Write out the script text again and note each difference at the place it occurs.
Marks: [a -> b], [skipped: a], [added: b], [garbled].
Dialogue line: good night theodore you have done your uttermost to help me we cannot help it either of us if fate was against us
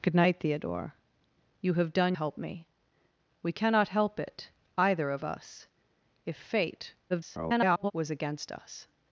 good night theodore you have done [skipped: your uttermost to] help me we cannot help it either of us if fate [garbled] was against us